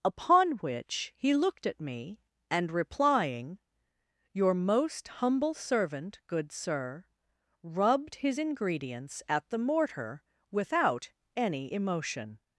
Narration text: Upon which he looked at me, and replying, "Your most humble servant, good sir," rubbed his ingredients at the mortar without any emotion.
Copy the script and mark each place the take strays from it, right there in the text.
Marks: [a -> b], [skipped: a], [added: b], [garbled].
Upon which he looked at me, and replying, "Your most humble servant, good sir," rubbed his ingredients at the mortar without any emotion.